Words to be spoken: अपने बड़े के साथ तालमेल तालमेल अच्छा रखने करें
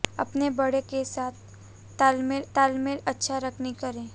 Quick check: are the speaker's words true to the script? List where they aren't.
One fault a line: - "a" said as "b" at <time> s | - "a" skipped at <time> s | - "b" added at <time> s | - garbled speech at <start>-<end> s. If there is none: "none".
none